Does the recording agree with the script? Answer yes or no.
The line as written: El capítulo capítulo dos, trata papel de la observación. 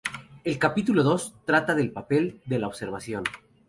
no